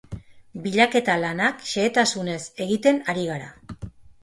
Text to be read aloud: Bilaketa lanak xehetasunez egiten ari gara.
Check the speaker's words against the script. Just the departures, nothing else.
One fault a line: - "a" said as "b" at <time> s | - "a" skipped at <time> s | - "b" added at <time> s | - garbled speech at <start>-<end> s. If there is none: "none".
none